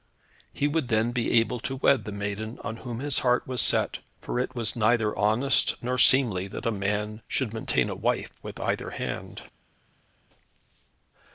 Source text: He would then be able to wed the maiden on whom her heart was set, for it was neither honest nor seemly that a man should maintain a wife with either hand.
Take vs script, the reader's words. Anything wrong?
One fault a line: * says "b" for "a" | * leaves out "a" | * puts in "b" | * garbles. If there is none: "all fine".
* says "his" for "her"